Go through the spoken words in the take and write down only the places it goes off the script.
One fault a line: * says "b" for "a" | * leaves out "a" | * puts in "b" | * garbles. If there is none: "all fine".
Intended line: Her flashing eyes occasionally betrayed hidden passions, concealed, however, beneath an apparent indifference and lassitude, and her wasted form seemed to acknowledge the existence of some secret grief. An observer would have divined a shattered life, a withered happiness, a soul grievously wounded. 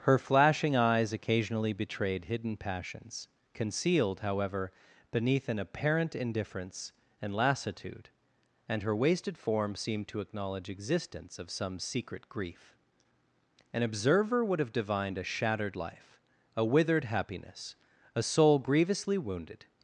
* leaves out "the"